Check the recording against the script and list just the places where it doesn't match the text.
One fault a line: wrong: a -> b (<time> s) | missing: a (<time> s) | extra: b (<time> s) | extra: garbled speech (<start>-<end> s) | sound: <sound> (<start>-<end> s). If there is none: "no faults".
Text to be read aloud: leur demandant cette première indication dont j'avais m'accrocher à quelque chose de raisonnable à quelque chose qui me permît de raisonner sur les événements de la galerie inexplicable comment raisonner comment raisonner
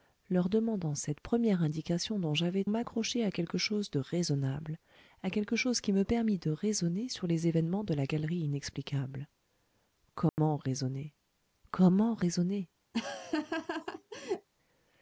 sound: dropout (10.3-10.4 s)
sound: laugh (12.9-14.5 s)